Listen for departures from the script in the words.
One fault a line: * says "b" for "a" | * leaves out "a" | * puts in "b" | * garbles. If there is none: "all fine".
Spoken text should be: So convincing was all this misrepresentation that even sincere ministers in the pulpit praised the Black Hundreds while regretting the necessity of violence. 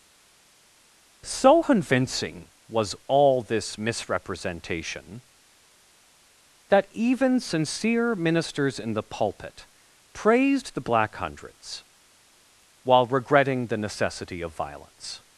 all fine